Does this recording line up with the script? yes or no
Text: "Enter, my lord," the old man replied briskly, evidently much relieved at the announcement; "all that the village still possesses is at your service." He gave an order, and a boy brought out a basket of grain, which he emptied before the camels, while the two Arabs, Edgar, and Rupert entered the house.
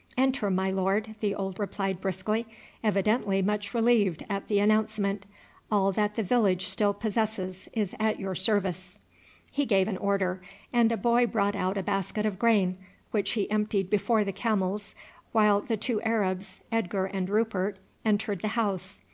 no